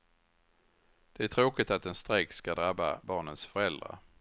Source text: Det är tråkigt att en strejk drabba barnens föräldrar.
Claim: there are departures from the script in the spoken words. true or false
true